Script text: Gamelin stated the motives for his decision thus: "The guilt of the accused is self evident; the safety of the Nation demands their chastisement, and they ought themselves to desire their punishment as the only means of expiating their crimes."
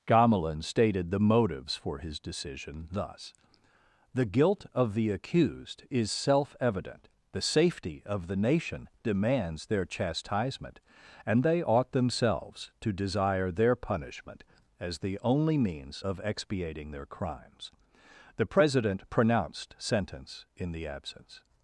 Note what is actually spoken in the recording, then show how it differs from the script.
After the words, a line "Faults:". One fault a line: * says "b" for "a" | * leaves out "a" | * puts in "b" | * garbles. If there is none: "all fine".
Gamelin stated the motives for his decision thus: "The guilt of the accused is self evident; the safety of the Nation demands their chastisement, and they ought themselves to desire their punishment as the only means of expiating their crimes." The President pronounced sentence in the absence
Faults:
* puts in "The President pronounced sentence in the absence"